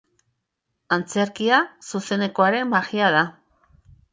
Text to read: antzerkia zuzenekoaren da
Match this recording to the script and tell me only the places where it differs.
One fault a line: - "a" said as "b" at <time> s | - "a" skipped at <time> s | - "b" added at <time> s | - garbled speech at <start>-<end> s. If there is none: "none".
- "magia" added at 2.7 s